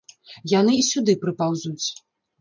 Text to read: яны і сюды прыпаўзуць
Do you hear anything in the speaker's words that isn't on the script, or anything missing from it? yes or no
no